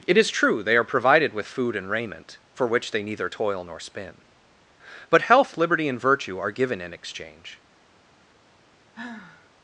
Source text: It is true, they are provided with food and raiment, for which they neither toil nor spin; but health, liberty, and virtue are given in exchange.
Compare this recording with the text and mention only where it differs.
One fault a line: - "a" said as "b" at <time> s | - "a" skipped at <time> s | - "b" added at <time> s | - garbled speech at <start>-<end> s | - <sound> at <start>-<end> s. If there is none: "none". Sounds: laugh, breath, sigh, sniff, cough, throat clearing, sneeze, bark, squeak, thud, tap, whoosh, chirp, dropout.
- sigh at 8.9-9.5 s